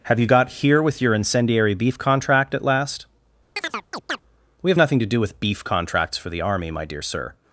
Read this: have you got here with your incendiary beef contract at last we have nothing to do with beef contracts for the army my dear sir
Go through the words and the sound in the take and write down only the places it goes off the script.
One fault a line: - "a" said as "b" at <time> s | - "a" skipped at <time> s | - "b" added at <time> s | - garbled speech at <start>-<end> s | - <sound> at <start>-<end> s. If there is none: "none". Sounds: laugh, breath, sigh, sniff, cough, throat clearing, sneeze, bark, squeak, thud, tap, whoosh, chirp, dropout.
- chirp at 3.6-4.2 s